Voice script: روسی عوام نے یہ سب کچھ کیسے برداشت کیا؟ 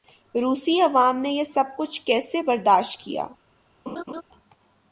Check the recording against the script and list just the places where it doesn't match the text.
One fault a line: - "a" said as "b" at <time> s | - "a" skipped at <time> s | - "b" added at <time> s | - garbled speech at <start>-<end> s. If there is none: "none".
none